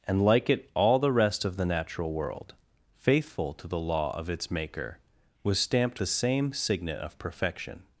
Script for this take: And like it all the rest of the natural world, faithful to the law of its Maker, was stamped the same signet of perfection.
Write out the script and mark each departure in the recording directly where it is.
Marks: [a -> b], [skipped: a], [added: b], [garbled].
And like it all the rest of the natural world, faithful to the law of its Maker, was stamped the same signet of perfection.